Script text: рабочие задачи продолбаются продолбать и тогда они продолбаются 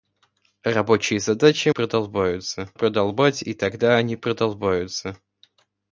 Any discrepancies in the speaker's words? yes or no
no